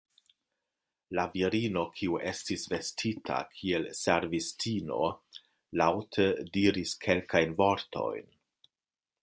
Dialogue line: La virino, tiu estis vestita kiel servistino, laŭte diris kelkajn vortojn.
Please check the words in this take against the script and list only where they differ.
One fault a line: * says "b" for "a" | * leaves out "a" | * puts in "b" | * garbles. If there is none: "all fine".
* says "kiu" for "tiu"